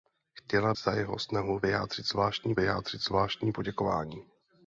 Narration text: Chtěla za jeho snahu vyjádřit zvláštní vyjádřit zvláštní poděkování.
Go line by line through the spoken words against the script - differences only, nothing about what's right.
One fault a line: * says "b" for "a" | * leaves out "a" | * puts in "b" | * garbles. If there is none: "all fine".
all fine